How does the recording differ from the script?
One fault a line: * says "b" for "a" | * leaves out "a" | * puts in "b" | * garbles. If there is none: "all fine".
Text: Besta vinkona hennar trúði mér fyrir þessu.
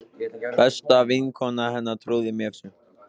* leaves out "fyrir"